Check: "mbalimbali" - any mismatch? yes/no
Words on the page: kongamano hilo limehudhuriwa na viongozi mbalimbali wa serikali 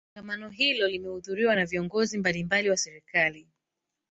no